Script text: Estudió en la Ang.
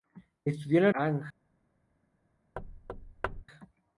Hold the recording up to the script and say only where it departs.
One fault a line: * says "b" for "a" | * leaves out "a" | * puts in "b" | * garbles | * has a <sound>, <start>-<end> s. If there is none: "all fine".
* has a thud, 2.6-3.4 s